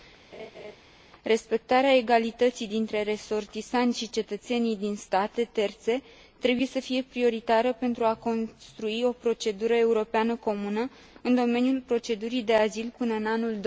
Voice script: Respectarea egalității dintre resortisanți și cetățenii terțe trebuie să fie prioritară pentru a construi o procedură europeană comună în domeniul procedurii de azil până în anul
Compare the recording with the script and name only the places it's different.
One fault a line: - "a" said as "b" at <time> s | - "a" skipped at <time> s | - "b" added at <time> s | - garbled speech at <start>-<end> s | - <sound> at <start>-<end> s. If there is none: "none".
- laugh at 0.3-0.8 s
- "din state" added at 4.8 s